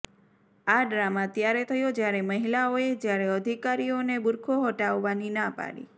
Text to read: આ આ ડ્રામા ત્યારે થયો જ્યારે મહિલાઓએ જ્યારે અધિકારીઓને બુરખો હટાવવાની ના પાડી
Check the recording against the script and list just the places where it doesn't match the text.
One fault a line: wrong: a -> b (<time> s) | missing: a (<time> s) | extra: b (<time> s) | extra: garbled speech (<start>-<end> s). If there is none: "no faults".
missing: આ (0.8 s)